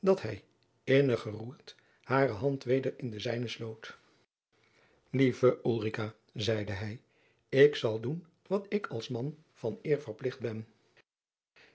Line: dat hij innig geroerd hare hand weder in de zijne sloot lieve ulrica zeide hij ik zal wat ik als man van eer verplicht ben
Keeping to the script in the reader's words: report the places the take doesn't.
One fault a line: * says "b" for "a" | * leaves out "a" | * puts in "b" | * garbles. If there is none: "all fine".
* puts in "doen"